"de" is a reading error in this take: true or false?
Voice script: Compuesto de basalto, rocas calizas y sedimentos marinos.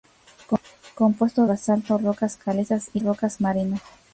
true